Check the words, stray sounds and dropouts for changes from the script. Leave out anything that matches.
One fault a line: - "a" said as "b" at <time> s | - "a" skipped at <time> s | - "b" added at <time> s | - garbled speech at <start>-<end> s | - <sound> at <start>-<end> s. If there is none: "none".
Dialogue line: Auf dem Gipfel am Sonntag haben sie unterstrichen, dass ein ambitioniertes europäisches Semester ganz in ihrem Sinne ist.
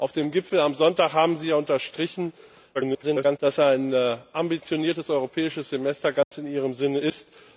- garbled speech at 2.7-3.4 s
- dropout at 6.2-6.3 s